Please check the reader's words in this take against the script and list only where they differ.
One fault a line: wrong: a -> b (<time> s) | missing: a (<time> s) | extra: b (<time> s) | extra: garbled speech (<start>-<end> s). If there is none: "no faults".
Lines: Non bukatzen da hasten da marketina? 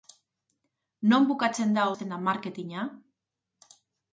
no faults